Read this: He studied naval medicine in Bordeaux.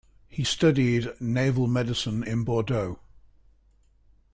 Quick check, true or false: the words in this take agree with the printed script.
true